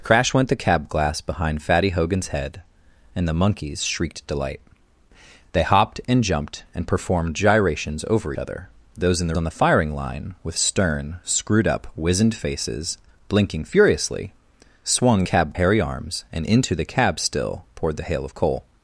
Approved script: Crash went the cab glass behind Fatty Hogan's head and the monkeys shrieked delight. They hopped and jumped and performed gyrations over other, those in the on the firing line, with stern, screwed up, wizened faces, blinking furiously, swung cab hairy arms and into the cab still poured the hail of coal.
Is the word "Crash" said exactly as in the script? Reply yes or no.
yes